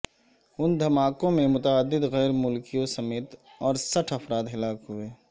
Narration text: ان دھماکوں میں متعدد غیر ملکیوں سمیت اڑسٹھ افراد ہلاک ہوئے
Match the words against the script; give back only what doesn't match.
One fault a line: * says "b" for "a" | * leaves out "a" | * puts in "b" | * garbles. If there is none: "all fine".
all fine